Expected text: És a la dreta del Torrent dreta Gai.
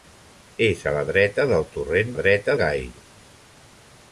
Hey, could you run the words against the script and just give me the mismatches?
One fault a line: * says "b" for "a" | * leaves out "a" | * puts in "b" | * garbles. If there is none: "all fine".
all fine